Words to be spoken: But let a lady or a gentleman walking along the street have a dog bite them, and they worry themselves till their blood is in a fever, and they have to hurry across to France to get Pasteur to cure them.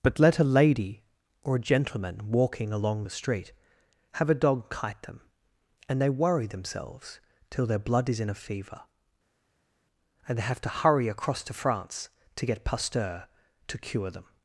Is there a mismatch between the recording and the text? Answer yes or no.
yes